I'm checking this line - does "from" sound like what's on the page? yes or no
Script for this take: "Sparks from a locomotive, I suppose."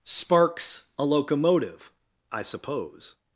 no